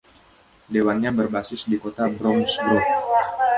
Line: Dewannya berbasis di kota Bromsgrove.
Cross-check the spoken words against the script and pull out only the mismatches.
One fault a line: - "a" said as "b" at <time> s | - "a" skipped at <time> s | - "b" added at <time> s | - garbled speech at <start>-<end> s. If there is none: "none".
none